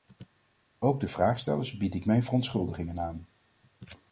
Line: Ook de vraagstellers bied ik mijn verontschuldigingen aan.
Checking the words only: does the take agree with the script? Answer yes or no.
yes